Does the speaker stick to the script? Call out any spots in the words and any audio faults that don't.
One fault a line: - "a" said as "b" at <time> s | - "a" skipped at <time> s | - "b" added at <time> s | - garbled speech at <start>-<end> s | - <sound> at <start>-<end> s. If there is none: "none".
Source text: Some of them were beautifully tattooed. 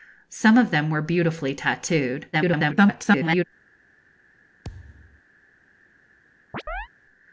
- garbled speech at 2.3-3.4 s
- thud at 4.6-5.2 s
- chirp at 6.5-6.9 s